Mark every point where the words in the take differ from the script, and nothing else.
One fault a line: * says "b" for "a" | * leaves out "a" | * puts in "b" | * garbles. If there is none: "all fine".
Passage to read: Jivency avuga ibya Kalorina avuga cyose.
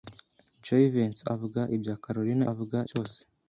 all fine